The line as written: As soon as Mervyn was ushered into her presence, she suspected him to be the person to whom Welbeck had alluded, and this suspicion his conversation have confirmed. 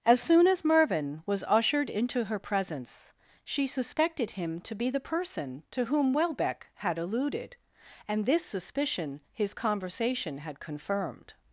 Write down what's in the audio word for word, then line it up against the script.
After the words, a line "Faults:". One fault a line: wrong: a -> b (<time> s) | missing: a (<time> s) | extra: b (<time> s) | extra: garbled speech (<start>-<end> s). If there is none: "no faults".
As soon as Mervyn was ushered into her presence, she suspected him to be the person to whom Welbeck had alluded, and this suspicion his conversation had confirmed.
Faults:
wrong: have -> had (10.4 s)